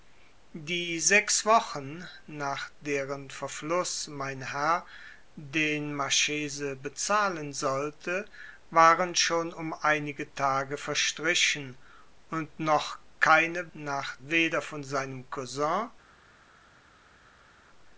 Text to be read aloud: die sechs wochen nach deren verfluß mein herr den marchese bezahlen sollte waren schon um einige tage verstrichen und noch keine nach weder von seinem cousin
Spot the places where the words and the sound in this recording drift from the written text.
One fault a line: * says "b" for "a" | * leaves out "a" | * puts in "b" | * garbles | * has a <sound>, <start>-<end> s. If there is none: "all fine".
all fine